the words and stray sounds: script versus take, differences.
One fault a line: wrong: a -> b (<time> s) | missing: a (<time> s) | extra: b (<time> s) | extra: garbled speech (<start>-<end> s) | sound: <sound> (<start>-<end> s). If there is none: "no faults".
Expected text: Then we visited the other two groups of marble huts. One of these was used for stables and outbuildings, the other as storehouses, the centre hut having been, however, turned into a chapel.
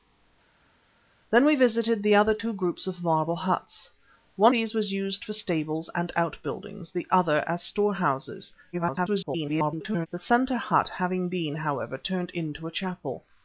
missing: of (4.5 s)
extra: garbled speech (8.7-10.1 s)